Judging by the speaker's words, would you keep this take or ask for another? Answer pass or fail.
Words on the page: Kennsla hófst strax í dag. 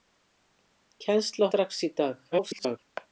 fail